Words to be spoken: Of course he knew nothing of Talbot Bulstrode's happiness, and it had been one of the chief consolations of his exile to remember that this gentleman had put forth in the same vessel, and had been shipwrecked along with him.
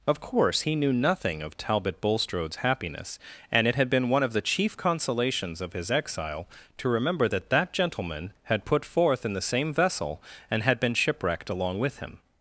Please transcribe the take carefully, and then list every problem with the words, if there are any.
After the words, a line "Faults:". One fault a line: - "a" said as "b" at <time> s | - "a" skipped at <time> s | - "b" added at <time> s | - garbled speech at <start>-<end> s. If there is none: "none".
Of course he knew nothing of Talbot Bulstrode's happiness, and it had been one of the chief consolations of his exile to remember that that gentleman had put forth in the same vessel, and had been shipwrecked along with him.
Faults:
- "this" said as "that" at 7.5 s